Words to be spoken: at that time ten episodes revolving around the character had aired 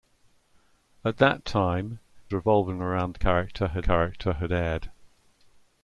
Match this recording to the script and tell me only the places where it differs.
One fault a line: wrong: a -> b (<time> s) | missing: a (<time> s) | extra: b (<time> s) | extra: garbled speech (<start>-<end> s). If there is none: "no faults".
missing: ten episodes (2.0 s)
extra: character had (3.8 s)